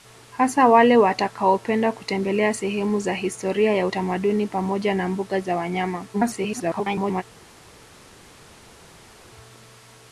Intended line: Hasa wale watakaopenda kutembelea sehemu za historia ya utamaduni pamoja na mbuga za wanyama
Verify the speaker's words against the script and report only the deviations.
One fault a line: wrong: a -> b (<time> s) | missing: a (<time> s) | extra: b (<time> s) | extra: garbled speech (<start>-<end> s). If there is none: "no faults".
extra: garbled speech (6.1-7.2 s)